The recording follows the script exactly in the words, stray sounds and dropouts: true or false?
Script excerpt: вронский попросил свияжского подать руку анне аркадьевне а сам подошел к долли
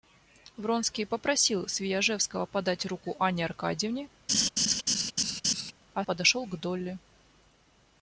false